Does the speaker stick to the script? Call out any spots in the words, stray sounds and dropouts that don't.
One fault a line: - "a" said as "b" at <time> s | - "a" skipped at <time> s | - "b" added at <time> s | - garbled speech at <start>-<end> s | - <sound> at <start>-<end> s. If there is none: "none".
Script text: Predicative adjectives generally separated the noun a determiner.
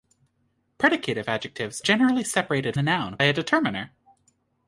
none